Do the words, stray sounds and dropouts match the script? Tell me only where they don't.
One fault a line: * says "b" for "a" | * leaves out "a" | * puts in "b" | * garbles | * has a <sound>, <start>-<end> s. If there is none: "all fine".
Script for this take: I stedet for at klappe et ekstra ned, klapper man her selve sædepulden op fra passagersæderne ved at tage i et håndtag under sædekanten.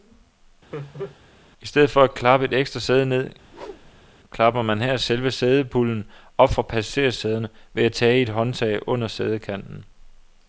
* has a laugh, 0.7-1.2 s
* puts in "sæde"
* has a whoosh, 3.4-4.1 s